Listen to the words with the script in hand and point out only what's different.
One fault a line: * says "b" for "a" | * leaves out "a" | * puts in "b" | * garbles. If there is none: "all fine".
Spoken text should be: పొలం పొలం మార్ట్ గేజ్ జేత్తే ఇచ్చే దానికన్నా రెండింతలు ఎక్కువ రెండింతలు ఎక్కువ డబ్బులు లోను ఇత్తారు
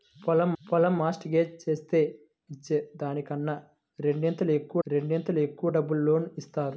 all fine